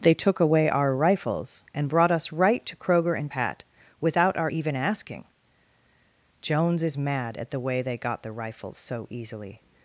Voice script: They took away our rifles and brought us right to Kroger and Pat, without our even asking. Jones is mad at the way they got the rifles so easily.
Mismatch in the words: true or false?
false